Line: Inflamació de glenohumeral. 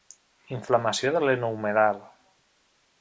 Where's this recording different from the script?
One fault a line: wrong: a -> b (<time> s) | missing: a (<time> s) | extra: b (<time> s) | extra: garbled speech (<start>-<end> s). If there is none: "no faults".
no faults